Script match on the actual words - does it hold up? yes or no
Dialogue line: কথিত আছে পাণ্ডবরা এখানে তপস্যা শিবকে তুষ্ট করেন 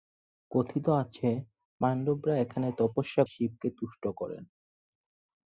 yes